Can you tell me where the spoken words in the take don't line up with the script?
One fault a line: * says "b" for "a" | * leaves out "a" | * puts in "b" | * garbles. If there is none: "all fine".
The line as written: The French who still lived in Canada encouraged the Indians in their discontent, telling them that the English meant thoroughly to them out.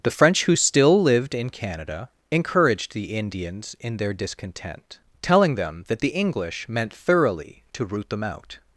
* puts in "root"